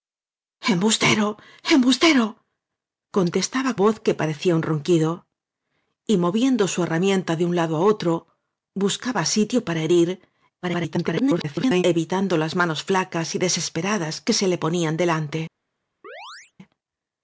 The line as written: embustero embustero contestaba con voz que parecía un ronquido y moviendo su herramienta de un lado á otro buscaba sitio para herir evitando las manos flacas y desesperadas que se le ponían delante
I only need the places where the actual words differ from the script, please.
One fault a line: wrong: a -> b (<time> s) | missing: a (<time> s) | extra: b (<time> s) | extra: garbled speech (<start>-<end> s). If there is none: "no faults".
missing: con (3.7 s)
extra: garbled speech (10.6-11.8 s)